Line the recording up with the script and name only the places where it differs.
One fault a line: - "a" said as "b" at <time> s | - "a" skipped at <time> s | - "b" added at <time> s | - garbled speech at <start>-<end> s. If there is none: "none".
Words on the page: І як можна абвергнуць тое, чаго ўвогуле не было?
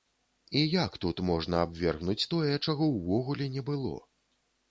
- "тут" added at 1.0 s